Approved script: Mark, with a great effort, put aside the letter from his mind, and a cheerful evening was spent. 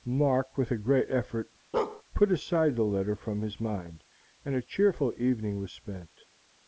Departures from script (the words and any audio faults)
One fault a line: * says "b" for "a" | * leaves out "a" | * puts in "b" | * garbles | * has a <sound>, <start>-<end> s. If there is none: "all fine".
* has a bark, 1.7-2.0 s